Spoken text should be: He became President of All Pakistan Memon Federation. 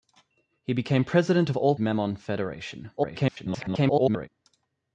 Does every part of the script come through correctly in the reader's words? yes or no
no